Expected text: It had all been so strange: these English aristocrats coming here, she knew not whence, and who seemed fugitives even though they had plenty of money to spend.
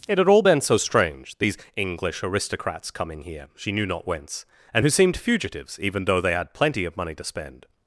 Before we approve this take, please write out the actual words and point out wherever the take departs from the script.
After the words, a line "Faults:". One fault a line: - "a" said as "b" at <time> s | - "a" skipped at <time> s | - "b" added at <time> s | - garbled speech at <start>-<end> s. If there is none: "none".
It had all been so strange: these English aristocrats coming here, she knew not whence, and who seemed fugitives even though they had plenty of money to spend.
Faults:
none